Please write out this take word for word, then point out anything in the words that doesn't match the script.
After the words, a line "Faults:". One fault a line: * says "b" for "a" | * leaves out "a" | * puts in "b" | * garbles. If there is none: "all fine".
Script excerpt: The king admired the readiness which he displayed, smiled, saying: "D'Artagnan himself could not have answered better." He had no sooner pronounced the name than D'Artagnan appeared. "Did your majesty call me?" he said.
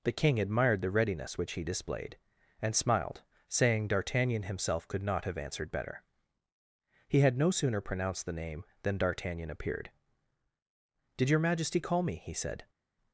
The king admired the readiness which he displayed, and smiled, saying: "D'Artagnan himself could not have answered better." He had no sooner pronounced the name than D'Artagnan appeared. "Did your majesty call me?" he said.
Faults:
* puts in "and"